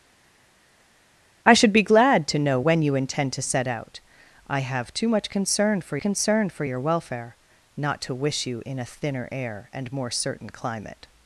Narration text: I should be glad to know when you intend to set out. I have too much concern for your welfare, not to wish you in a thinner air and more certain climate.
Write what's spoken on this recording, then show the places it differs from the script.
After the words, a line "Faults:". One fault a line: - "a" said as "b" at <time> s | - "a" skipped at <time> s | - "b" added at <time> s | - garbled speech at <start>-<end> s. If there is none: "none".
I should be glad to know when you intend to set out. I have too much concern for concern for your welfare, not to wish you in a thinner air and more certain climate.
Faults:
- "concern for" added at 6.0 s